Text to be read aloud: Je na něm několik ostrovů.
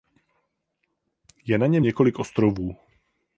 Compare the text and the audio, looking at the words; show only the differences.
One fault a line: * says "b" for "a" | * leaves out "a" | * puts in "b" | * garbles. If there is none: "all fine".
all fine